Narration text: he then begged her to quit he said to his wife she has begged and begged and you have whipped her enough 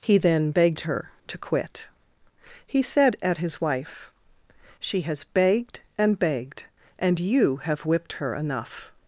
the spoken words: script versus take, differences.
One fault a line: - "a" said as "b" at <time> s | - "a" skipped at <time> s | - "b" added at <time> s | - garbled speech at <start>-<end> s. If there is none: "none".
- "to" said as "at" at 3.2 s